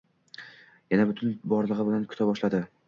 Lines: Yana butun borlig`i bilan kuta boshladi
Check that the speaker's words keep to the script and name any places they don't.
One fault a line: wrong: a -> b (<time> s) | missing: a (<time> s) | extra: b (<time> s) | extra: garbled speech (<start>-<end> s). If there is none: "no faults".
no faults